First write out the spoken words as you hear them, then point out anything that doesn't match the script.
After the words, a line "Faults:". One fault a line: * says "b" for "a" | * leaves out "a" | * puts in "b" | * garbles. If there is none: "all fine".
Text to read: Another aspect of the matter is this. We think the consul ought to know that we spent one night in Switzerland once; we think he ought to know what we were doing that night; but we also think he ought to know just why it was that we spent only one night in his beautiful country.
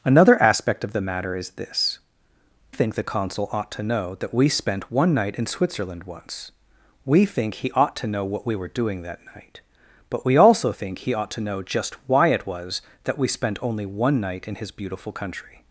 Another aspect of the matter is this. Think the consul ought to know that we spent one night in Switzerland once; we think he ought to know what we were doing that night; but we also think he ought to know just why it was that we spent only one night in his beautiful country.
Faults:
* leaves out "We"